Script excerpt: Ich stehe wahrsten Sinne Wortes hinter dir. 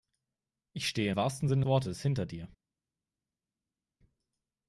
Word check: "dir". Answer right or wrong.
right